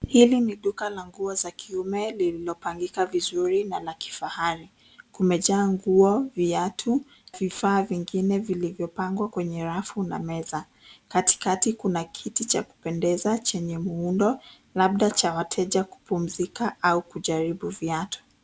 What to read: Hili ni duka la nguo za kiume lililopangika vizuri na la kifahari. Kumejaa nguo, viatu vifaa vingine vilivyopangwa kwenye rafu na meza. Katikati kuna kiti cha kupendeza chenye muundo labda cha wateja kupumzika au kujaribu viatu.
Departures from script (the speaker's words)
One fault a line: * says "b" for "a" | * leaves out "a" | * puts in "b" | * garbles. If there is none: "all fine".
all fine